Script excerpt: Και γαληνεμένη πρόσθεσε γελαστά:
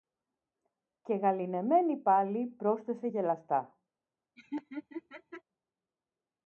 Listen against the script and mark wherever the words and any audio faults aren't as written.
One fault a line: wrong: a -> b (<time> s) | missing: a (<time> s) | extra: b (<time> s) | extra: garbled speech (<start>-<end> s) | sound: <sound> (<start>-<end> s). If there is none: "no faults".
extra: πάλι (2.0 s)
sound: laugh (4.4-5.4 s)